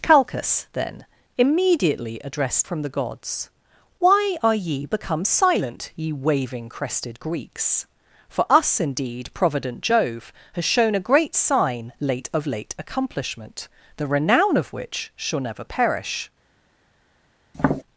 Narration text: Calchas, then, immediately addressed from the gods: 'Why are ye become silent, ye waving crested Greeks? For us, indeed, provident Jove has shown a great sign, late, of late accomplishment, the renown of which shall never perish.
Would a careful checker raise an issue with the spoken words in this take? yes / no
no